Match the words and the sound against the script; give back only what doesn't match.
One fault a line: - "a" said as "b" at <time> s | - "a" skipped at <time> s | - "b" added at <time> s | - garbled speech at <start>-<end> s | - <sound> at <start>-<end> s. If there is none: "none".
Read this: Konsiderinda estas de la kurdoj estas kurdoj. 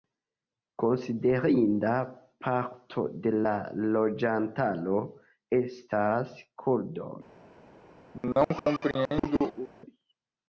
- "estas" said as "parto" at 2.5 s
- "kurdoj" said as "loĝantaro" at 4.0 s
- cough at 8.1-9.7 s